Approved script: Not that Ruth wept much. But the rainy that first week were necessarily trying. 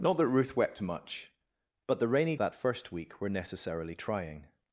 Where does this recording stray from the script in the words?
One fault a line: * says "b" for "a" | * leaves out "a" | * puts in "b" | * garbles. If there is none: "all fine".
all fine